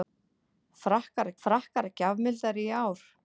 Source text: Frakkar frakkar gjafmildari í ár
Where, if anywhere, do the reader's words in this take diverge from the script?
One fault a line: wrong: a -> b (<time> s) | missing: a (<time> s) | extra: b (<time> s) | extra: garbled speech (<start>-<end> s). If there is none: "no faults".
no faults